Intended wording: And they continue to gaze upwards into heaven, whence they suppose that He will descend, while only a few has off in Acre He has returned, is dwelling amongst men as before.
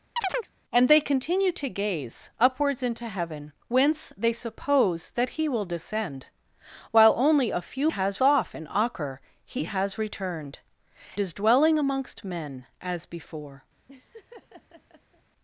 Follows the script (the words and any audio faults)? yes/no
no